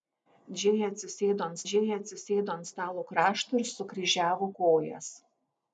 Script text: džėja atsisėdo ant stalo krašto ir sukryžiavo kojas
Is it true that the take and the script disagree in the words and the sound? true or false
true